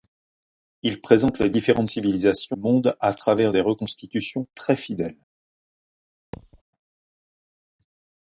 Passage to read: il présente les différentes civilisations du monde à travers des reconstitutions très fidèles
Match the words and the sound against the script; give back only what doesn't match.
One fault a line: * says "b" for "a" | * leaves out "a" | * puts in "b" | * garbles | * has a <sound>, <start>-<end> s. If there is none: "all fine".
* leaves out "du"
* has a thud, 6.3-6.6 s